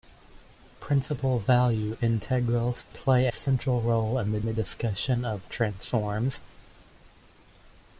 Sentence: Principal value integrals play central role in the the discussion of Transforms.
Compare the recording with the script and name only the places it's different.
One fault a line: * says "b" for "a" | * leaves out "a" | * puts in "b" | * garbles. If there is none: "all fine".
all fine